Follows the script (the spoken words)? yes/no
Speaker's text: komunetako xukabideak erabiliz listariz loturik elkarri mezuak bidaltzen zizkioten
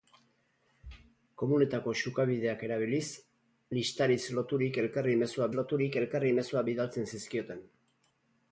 no